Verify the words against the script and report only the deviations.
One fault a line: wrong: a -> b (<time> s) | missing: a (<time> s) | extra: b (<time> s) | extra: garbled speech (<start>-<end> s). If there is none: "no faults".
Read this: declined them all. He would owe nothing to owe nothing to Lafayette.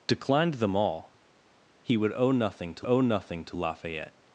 no faults